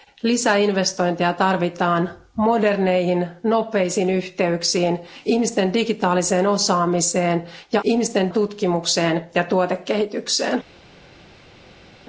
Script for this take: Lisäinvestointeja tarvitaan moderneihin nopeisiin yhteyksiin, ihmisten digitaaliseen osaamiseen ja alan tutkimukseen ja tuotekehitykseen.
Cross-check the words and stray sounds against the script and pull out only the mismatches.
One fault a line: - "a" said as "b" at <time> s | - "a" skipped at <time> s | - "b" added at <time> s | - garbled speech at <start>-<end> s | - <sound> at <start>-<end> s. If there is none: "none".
- "alan" said as "ihmisten" at 7.8 s